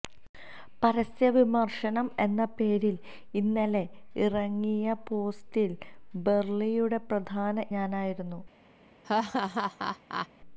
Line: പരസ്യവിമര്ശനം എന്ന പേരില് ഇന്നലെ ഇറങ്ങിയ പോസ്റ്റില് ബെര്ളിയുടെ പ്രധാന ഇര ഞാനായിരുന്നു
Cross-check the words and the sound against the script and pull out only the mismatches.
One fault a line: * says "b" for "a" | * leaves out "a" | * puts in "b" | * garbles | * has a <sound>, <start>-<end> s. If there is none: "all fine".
* leaves out "ഇര"
* has a laugh, 9.0-10.3 s